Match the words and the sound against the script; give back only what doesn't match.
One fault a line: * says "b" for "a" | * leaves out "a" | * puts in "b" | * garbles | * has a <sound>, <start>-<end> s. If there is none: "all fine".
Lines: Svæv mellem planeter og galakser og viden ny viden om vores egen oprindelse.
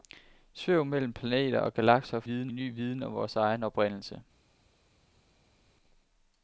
all fine